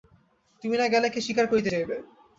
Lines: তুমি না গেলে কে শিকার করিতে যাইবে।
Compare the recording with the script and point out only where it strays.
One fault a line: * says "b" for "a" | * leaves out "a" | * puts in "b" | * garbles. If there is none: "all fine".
all fine